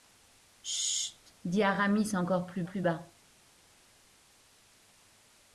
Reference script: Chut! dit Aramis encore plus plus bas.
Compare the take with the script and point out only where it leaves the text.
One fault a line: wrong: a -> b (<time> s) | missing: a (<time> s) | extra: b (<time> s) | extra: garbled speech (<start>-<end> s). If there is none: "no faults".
no faults